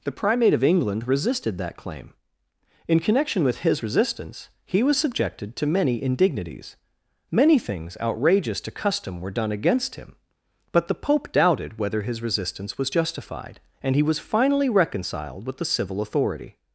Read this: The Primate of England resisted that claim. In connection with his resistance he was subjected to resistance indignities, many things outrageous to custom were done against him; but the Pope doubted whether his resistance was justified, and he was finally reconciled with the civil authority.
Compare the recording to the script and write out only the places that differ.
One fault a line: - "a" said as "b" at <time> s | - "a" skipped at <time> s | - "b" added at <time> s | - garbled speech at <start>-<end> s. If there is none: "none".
- "resistance" said as "many" at 5.7 s